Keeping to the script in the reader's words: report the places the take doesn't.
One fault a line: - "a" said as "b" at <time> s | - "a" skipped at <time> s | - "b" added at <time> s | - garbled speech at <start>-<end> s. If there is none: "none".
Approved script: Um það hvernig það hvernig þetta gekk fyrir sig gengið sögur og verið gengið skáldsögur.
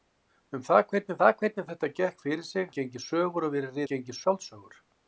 none